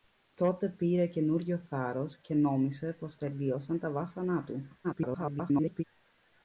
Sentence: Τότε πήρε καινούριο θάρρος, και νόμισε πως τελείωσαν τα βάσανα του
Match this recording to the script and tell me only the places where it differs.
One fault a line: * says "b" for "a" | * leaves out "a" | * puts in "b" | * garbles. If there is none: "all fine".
* garbles